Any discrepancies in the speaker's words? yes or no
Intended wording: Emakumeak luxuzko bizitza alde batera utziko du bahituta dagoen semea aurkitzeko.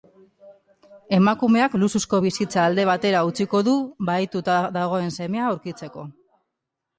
no